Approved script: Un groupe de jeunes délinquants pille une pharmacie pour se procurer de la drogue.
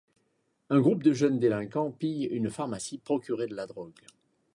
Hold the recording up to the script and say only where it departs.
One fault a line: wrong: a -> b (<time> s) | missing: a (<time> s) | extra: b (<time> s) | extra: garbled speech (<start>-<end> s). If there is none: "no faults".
missing: pour se (3.0 s)